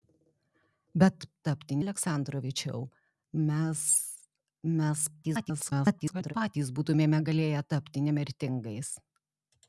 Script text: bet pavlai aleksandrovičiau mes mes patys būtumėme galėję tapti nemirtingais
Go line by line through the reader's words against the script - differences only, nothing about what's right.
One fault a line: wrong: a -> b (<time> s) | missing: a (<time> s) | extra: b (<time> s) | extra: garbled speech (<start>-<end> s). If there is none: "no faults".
wrong: pavlai -> tapti (1.5 s)
extra: garbled speech (5.2-6.3 s)